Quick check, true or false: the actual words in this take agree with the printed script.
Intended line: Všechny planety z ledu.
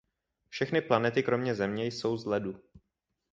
false